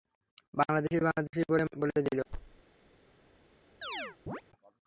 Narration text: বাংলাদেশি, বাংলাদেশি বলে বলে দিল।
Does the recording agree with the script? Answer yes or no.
yes